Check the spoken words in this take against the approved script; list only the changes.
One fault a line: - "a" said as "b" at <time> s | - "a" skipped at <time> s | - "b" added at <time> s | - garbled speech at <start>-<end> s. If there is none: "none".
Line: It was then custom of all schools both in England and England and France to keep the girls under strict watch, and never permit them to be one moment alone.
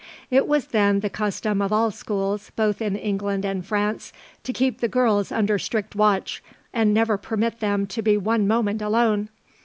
- "the" added at 1.0 s
- "England and" skipped at 3.6 s